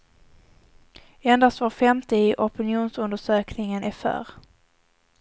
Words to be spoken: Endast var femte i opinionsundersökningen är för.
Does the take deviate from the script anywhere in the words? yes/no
no